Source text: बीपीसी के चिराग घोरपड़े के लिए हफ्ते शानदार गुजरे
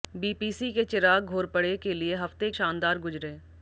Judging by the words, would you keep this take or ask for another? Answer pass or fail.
pass